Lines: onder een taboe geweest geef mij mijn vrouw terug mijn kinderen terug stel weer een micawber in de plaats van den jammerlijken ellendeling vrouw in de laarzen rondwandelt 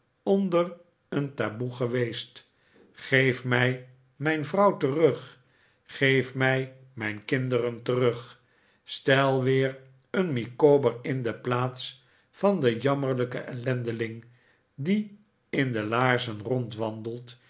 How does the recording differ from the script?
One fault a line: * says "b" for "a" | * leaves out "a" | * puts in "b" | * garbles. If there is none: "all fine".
* puts in "geef mij"
* says "die" for "vrouw"